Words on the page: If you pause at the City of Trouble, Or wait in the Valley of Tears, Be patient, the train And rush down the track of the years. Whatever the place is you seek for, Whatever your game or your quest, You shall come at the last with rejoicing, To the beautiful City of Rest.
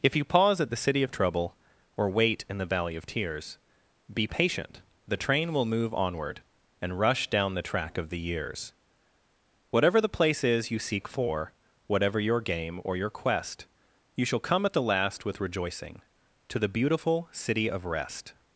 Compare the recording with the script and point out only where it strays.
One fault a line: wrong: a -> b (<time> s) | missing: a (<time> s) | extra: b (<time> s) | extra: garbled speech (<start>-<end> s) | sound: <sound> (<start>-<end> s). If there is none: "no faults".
extra: will move onward (5.5 s)